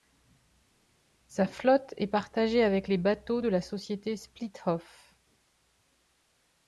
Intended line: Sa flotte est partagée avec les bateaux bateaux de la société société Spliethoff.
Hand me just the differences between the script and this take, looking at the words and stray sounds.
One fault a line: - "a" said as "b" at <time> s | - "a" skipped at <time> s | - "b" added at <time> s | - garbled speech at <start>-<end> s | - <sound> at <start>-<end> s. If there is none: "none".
- "bateaux" skipped at 3.4 s
- "société" skipped at 4.1 s